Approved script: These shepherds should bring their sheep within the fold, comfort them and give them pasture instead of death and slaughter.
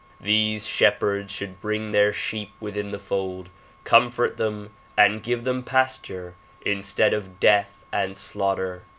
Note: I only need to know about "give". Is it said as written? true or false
true